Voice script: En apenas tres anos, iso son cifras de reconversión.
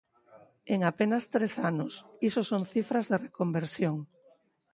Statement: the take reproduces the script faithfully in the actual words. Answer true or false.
true